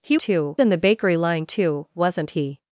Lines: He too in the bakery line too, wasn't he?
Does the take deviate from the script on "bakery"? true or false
false